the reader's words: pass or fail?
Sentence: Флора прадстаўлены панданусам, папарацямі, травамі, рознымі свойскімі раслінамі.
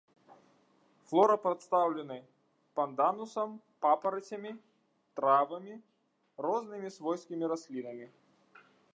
pass